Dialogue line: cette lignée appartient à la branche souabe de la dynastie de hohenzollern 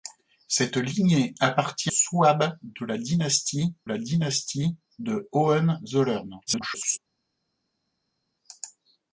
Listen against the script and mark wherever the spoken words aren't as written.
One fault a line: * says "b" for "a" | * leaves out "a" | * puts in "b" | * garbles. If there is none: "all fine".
* says "souabe de" for "à"
* says "dynastie" for "branche souabe de"
* garbles